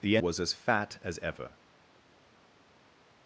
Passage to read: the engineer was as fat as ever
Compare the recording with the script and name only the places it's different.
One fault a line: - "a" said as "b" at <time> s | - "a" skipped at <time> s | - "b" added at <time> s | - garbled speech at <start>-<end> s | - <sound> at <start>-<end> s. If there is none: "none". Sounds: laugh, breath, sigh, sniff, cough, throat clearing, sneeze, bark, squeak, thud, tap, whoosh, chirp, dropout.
- "engineer" skipped at 0.2 s